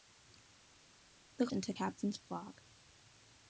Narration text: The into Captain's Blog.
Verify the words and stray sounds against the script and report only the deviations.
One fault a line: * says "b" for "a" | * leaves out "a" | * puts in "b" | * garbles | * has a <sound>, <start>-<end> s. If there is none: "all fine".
all fine